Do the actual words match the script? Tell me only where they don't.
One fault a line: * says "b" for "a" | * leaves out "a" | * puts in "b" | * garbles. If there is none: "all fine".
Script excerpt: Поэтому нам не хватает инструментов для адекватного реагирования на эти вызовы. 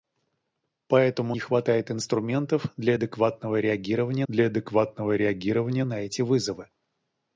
* leaves out "нам"
* puts in "для адекватного реагирования"